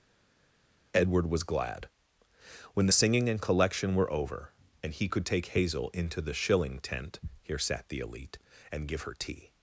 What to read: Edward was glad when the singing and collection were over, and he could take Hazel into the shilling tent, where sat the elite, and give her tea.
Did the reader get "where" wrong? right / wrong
wrong